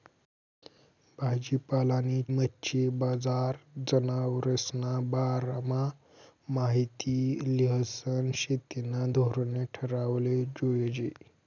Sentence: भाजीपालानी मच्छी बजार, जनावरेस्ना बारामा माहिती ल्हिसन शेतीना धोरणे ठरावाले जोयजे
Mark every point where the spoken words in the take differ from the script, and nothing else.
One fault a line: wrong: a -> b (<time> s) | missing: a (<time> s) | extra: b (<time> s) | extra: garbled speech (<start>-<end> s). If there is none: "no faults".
no faults